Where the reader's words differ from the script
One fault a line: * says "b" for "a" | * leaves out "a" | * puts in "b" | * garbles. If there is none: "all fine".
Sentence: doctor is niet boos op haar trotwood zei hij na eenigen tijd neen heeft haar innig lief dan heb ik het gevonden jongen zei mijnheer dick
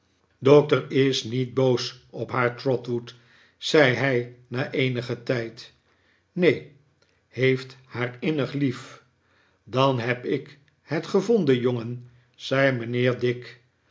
all fine